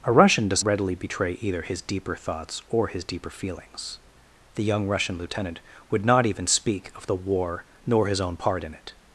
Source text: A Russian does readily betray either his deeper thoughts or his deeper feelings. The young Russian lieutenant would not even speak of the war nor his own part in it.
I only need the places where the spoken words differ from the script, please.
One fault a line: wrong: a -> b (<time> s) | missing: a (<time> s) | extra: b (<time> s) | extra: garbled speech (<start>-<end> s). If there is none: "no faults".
no faults